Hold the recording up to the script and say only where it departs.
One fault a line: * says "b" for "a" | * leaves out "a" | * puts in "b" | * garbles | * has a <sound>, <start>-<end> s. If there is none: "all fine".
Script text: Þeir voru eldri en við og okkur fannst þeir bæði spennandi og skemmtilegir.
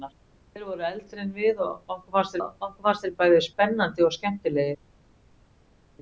* puts in "og okkur fannst"